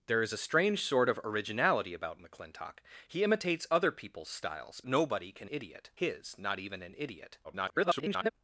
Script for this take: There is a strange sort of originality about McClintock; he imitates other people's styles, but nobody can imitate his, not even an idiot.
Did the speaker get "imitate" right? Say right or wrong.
wrong